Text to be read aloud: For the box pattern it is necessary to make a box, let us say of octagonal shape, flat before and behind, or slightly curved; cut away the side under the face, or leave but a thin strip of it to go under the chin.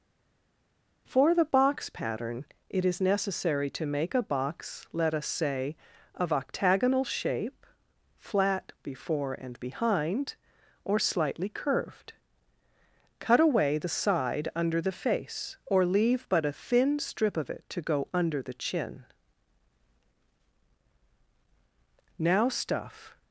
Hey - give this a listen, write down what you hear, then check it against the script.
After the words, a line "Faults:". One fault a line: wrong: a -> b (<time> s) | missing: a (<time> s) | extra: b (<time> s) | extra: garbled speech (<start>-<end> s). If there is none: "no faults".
For the box pattern it is necessary to make a box, let us say of octagonal shape, flat before and behind, or slightly curved; cut away the side under the face, or leave but a thin strip of it to go under the chin. Now stuff
Faults:
extra: Now stuff (22.2 s)